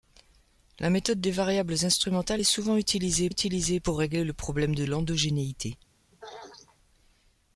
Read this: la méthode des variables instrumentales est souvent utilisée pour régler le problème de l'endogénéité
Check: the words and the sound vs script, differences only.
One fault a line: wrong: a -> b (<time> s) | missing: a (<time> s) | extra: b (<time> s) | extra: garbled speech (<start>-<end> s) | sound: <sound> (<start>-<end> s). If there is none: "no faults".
extra: utilisée (3.3 s)
sound: throat clearing (6.1-6.8 s)